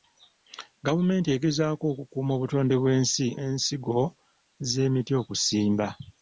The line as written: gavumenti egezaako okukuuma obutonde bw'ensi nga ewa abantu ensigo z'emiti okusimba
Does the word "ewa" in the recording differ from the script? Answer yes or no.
yes